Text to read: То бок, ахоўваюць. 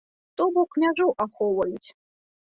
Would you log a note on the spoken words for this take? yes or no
yes